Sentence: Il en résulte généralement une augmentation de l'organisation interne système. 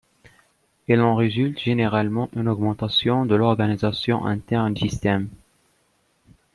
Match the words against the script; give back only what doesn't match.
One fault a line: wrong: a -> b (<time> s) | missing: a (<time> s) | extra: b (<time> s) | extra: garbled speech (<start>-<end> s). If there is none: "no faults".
no faults